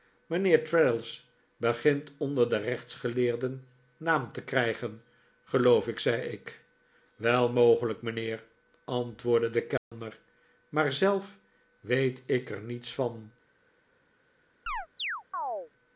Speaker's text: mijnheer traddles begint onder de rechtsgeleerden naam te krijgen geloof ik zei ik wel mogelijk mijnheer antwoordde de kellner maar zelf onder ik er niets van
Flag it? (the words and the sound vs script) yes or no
yes